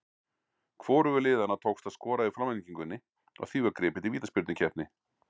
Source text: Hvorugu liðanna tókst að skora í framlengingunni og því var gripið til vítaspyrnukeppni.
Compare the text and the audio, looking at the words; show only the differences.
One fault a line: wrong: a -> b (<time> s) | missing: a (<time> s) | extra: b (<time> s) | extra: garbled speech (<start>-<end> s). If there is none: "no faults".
no faults